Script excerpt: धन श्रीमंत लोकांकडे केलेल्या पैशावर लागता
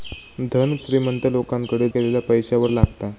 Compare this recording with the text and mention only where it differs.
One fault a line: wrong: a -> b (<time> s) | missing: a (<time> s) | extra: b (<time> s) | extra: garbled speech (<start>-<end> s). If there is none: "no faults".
no faults